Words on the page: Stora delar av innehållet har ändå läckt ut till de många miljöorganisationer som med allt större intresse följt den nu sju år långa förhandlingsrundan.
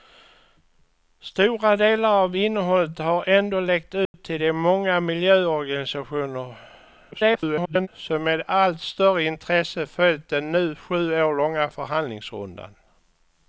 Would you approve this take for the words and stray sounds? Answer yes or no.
no